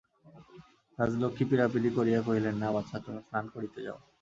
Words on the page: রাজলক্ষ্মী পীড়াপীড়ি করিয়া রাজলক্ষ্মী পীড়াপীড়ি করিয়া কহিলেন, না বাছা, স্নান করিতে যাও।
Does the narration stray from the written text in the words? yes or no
yes